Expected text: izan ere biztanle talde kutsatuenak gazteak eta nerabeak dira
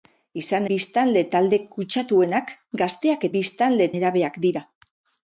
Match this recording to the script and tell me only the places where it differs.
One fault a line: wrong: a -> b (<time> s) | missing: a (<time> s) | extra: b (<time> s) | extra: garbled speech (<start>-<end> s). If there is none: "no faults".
missing: ere (0.7 s)
wrong: eta -> biztanle (3.3 s)